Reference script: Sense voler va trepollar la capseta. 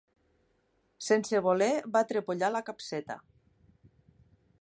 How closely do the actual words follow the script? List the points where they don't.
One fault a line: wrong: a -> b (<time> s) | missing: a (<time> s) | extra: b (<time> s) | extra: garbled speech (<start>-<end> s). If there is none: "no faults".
no faults